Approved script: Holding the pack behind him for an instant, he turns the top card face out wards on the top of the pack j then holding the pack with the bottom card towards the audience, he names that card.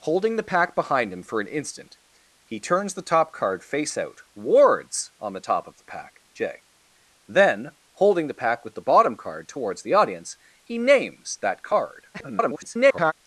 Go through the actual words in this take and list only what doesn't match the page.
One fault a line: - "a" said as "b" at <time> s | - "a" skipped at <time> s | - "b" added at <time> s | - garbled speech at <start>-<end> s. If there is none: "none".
- garbled speech at 12.1-13.1 s